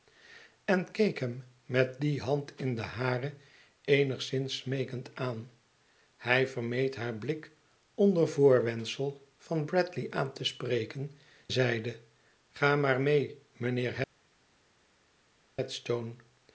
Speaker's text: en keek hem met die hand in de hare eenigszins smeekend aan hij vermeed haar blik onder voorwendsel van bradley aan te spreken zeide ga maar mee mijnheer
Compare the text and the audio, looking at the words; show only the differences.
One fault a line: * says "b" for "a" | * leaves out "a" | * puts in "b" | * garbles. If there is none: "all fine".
all fine